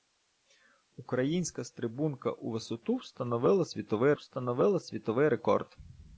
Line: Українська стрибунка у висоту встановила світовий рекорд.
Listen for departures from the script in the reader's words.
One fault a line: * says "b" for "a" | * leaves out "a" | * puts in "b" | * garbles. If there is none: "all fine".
* puts in "встановила світовий"